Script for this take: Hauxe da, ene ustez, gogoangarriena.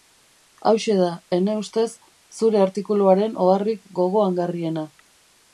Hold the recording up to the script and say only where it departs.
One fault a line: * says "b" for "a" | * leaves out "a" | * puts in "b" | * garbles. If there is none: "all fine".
* puts in "zure artikuluaren oharrik"